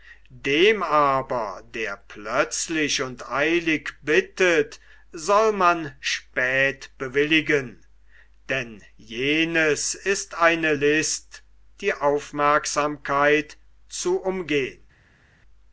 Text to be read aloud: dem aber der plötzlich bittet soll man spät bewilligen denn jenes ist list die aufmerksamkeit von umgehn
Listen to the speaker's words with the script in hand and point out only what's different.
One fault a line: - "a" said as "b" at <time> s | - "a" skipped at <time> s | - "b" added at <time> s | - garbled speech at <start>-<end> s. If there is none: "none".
- "und eilig" added at 3.0 s
- "eine" added at 10.3 s
- "von" said as "zu" at 13.9 s